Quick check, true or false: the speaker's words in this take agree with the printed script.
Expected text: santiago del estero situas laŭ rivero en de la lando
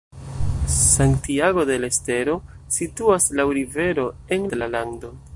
true